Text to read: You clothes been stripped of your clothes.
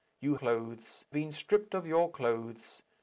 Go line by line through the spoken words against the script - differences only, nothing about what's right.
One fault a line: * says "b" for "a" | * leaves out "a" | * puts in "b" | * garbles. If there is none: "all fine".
all fine